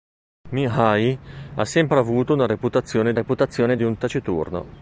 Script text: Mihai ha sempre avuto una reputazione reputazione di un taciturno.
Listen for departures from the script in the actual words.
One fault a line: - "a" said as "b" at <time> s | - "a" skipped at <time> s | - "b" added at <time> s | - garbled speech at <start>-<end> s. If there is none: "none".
none